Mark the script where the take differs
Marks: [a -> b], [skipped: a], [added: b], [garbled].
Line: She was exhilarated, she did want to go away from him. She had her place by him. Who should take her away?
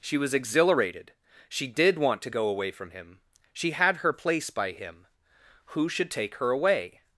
She was exhilarated, she did want to go away from him. She had her place by him. Who should take her away?